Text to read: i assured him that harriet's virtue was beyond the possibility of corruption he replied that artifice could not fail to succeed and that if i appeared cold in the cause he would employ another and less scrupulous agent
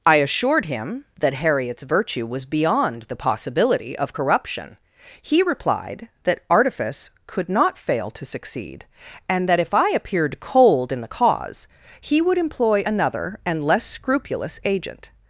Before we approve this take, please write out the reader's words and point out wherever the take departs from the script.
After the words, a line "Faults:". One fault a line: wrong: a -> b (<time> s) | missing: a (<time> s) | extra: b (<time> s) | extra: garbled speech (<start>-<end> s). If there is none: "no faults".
i assured him that harriet's virtue was beyond the possibility of corruption he replied that artifice could not fail to succeed and that if i appeared cold in the cause he would employ another and less scrupulous agent
Faults:
no faults